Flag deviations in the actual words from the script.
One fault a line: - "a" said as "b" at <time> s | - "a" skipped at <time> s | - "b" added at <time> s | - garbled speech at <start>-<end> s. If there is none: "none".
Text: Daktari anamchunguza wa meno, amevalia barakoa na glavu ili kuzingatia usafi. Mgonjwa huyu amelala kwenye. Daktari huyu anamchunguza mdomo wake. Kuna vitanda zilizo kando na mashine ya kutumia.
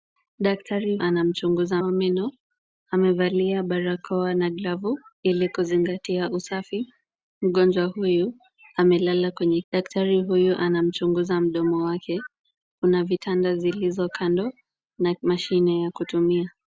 none